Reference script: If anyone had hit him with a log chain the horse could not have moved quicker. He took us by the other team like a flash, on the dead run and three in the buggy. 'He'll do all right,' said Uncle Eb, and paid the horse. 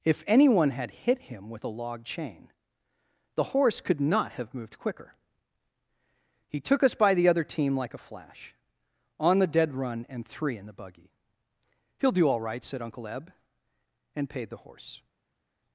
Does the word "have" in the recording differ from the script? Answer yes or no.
no